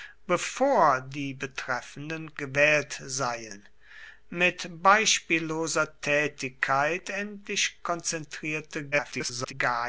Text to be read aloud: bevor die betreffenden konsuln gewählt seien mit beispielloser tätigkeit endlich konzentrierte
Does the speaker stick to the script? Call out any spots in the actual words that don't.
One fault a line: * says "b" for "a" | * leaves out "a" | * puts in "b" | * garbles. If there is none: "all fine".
* leaves out "konsuln"
* garbles